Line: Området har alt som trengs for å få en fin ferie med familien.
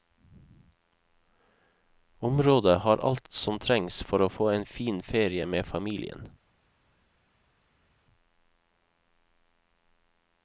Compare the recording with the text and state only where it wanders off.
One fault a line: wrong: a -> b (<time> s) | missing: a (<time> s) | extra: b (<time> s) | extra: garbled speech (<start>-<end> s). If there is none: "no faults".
no faults